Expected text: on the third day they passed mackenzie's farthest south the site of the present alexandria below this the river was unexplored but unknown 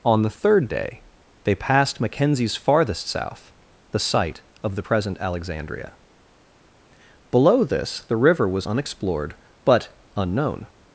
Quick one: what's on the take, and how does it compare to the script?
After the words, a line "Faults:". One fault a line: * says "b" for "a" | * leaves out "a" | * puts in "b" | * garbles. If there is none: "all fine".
on the third day they passed mackenzie's farthest south the site of the present alexandria below this the river was unexplored but unknown
Faults:
all fine